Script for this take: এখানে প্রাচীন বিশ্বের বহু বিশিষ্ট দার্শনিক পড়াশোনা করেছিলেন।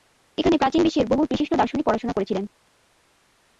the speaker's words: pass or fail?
pass